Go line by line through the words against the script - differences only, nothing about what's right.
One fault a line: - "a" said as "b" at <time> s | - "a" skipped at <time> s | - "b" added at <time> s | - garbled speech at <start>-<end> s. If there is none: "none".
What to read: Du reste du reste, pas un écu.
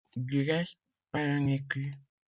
- "du reste" skipped at 0.8 s